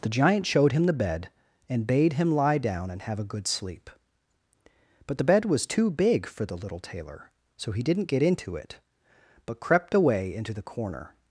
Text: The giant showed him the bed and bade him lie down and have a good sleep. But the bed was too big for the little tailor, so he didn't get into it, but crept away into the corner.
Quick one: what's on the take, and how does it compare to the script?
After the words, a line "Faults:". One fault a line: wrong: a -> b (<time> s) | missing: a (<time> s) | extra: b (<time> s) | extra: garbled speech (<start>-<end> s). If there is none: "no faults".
The giant showed him the bed and bade him lie down and have a good sleep. But the bed was too big for the little tailor, so he didn't get into it, but crept away into the corner.
Faults:
no faults